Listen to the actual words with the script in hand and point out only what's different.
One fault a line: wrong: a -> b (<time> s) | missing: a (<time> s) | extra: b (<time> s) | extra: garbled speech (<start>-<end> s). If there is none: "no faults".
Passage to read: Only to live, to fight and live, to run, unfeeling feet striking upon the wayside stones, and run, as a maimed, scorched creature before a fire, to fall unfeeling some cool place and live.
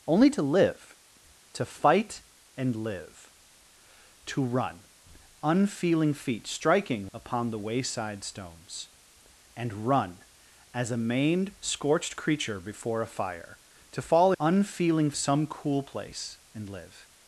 no faults